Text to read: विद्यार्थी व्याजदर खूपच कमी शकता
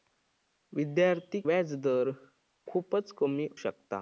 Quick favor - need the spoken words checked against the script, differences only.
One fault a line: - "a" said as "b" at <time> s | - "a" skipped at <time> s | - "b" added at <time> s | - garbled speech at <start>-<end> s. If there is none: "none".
none